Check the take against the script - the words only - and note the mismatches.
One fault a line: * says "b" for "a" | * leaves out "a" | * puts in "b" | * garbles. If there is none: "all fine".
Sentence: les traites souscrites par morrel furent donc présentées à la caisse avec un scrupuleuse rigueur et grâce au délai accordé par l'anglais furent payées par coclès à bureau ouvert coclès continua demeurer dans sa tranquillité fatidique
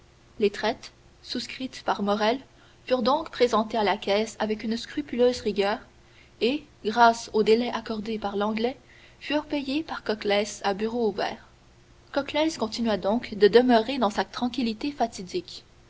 * says "une" for "un"
* puts in "donc de"